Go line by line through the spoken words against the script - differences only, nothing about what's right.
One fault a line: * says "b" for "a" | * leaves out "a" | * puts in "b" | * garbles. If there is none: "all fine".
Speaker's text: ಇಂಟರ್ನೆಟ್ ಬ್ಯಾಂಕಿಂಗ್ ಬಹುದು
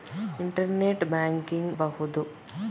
all fine